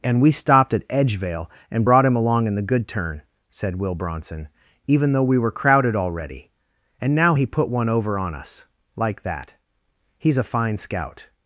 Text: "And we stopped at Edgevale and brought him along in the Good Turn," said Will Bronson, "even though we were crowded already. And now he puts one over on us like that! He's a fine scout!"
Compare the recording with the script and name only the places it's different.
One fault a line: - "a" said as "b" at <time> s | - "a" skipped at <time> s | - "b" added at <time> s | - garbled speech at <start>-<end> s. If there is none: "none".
- "puts" said as "put" at 7.4 s